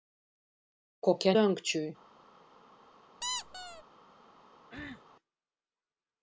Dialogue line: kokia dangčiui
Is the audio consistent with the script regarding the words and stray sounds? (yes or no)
no